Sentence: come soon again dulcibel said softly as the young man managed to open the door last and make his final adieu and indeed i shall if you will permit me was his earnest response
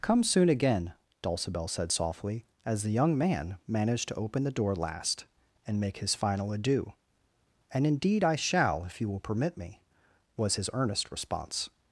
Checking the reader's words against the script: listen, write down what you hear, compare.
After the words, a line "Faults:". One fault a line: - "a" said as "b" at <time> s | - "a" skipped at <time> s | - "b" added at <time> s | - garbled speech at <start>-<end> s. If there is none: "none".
come soon again dulcibel said softly as the young man managed to open the door last and make his final adieu and indeed i shall if you will permit me was his earnest response
Faults:
none